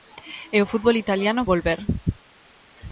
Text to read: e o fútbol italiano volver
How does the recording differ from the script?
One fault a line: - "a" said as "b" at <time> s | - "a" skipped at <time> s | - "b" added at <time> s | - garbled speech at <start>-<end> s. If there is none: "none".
none